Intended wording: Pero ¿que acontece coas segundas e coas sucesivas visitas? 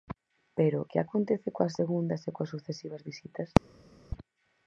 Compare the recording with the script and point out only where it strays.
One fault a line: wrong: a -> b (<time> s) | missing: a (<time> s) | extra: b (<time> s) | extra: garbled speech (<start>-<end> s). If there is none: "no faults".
no faults